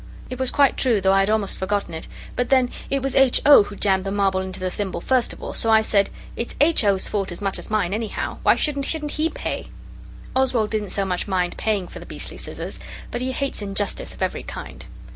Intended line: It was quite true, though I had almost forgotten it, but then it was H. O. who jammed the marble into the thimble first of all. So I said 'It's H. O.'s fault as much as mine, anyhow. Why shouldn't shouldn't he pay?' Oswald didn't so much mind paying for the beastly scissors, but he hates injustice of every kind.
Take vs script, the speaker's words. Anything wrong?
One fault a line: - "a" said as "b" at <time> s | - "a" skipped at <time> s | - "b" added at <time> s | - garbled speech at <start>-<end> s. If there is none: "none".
none